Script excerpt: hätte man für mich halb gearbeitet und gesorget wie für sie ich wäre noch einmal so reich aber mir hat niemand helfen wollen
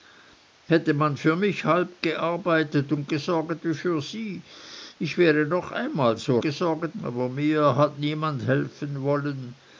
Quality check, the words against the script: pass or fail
fail